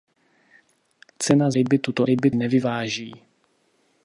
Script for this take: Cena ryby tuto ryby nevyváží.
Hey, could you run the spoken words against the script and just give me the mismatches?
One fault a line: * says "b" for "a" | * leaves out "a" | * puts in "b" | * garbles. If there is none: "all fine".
all fine